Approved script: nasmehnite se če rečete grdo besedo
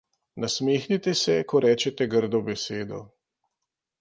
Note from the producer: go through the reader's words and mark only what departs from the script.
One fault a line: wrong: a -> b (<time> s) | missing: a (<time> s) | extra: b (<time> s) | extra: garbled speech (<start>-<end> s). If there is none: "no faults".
wrong: če -> ko (1.4 s)